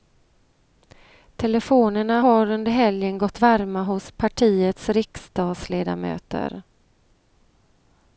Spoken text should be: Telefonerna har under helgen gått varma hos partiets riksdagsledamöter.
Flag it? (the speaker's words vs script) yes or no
no